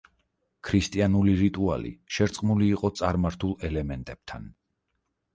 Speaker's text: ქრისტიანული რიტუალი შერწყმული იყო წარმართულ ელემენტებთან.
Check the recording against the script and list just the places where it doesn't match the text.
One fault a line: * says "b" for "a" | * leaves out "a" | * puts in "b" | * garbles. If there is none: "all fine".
all fine